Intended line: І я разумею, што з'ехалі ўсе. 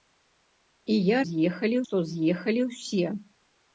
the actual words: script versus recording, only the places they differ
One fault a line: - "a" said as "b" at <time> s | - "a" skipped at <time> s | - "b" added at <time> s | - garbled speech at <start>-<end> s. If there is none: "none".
- "разумею" said as "з'ехалі" at 1.3 s